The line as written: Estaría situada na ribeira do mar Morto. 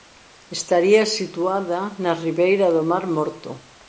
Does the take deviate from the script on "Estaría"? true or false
false